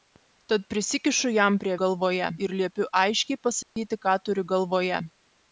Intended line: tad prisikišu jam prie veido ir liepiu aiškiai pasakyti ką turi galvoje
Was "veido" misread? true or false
true